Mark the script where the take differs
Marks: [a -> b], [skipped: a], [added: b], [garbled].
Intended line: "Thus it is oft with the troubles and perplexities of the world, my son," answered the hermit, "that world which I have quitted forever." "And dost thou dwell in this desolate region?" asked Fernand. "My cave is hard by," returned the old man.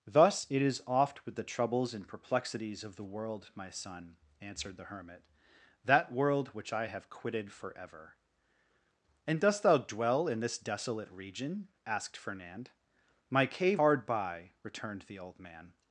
"Thus it is oft with the troubles and perplexities of the world, my son," answered the hermit, "that world which I have quitted forever." "And dost thou dwell in this desolate region?" asked Fernand. "My cave [skipped: is] hard by," returned the old man.